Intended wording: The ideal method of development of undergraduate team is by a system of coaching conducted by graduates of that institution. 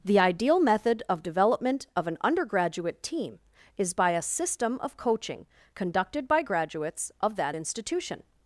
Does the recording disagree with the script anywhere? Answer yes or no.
yes